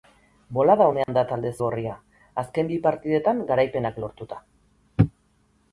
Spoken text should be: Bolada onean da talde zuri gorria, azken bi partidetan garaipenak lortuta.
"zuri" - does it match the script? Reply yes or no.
no